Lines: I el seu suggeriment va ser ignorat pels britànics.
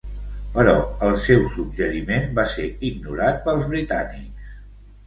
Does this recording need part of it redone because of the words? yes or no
yes